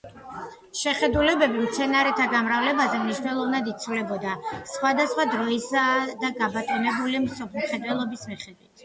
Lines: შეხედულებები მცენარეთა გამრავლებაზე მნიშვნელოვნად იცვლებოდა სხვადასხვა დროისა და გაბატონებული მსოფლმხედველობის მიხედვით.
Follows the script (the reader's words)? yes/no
yes